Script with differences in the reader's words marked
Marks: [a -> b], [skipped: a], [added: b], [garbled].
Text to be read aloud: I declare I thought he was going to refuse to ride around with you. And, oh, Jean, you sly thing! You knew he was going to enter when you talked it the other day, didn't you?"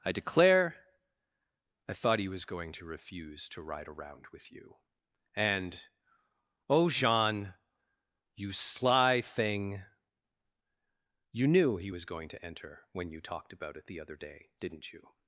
I declare I thought he was going to refuse to ride around with you. And, oh, Jean, you sly thing! You knew he was going to enter when you talked [added: about] it the other day, didn't you?"